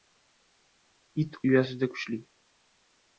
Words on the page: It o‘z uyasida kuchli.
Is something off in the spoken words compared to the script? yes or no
yes